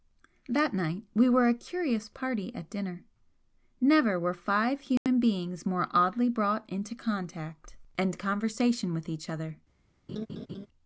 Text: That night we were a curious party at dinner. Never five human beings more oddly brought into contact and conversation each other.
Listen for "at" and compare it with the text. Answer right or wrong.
right